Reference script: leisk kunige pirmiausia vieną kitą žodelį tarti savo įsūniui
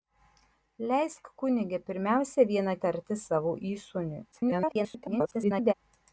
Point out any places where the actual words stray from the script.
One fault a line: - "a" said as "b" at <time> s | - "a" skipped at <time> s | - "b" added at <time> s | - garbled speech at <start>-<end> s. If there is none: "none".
- "kitą žodelį" skipped at 2.8 s
- garbled speech at 4.3-5.7 s